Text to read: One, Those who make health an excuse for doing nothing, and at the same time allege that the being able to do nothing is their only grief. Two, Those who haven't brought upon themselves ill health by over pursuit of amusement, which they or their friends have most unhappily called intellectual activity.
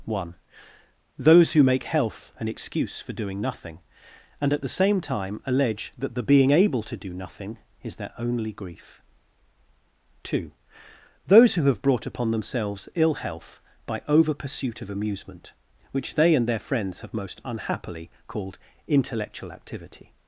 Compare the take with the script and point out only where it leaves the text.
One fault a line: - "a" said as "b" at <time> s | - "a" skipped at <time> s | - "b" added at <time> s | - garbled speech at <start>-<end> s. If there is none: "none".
- "haven't" said as "have" at 11.6 s
- "or" said as "and" at 16.3 s